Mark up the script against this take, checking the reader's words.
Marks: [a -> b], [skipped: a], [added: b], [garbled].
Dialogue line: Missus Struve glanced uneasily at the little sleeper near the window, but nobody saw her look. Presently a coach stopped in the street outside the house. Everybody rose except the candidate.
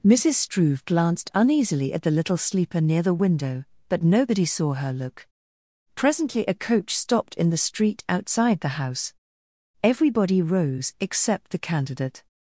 Missus Struve glanced uneasily at the little sleeper near the window, but nobody saw her look. Presently a coach stopped in the street outside the house. Everybody rose except the candidate.